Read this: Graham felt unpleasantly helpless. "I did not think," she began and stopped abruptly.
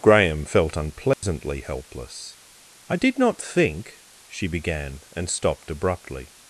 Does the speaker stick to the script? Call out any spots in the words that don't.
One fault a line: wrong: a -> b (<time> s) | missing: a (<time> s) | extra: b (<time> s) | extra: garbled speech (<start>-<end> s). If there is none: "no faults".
no faults